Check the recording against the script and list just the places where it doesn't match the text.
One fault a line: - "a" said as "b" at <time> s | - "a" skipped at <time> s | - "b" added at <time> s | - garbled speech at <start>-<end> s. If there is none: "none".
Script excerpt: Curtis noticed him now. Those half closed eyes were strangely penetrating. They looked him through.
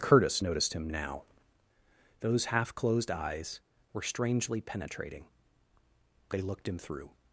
none